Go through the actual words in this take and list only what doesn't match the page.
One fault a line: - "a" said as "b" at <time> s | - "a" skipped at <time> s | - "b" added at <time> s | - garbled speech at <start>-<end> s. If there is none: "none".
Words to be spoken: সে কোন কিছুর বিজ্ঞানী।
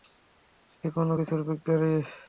none